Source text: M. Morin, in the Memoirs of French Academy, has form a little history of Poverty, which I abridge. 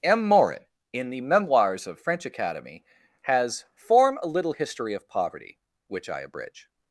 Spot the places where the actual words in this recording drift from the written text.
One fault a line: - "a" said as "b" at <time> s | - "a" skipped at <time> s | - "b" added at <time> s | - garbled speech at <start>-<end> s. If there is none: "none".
none